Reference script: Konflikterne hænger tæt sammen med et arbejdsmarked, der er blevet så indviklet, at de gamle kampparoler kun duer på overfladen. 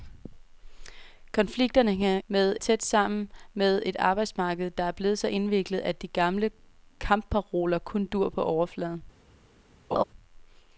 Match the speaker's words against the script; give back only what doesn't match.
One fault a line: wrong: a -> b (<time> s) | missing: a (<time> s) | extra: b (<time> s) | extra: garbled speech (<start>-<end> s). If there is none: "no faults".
wrong: hænger -> med (2.3 s)